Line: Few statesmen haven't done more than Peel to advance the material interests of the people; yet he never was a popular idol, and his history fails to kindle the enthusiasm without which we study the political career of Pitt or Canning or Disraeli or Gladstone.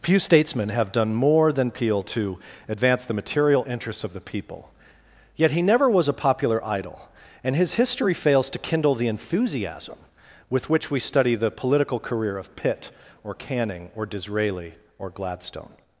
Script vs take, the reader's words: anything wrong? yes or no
yes